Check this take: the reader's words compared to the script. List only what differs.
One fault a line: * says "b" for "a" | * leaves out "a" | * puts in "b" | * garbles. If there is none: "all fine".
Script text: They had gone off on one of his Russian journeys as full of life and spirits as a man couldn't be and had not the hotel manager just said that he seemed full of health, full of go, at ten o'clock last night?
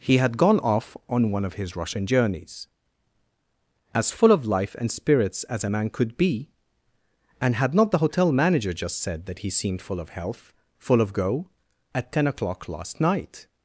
* says "He" for "They"
* says "could" for "couldn't"